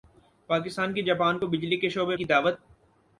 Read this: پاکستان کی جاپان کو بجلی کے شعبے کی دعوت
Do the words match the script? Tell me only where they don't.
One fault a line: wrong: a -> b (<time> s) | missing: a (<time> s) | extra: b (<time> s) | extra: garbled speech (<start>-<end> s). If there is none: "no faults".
no faults